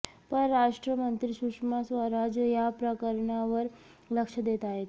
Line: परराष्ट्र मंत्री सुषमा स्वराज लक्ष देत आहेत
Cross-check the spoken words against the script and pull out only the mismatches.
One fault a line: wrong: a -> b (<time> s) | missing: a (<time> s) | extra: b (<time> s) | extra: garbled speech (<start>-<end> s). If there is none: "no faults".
extra: या प्रकरणावर (2.4 s)